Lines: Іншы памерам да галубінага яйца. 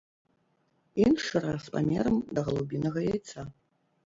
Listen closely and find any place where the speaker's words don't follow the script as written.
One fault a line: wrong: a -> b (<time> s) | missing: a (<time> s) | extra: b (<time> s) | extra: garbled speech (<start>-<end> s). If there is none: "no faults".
extra: раз (1.4 s)